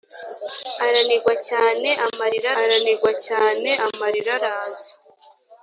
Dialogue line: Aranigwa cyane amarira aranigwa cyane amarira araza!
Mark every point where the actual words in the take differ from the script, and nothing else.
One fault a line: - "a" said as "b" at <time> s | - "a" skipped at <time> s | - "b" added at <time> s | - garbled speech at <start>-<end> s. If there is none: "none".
none